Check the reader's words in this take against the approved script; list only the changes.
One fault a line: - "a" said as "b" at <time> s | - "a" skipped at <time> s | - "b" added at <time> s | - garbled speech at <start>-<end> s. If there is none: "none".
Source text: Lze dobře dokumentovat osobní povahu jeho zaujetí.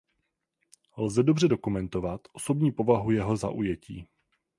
none